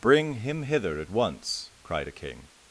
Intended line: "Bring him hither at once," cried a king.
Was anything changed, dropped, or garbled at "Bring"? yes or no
no